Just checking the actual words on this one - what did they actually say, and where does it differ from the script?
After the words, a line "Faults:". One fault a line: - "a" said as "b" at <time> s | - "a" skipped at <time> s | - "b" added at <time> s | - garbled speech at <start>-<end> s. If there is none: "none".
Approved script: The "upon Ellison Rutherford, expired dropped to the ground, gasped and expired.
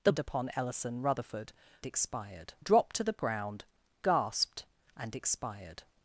The "upon Ellison Rutherford, expired dropped to the ground, gasped and expired.
Faults:
none